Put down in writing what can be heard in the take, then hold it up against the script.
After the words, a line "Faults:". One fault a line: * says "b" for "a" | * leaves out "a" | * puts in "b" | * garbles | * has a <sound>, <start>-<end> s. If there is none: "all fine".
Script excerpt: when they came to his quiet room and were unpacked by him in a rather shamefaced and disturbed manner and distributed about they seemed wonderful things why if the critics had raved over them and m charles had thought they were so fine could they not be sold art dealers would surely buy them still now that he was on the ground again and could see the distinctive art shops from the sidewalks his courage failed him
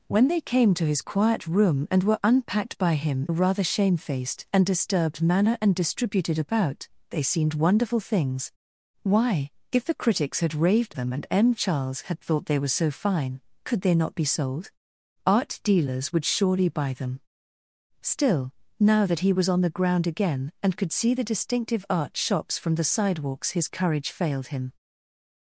when they came to his quiet room and were unpacked by him a rather shamefaced and disturbed manner and distributed about they seemed wonderful things why if the critics had raved them and m charles had thought they were so fine could they not be sold art dealers would surely buy them still now that he was on the ground again and could see the distinctive art shops from the sidewalks his courage failed him
Faults:
* leaves out "in"
* leaves out "over"